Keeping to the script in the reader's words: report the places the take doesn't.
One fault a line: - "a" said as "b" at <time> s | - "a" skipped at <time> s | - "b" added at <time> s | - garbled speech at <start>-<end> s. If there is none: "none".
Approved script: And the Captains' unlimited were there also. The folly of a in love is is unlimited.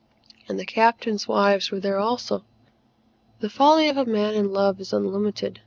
- "unlimited" said as "wives" at 1.3 s
- "man" added at 4.0 s
- "is" skipped at 4.9 s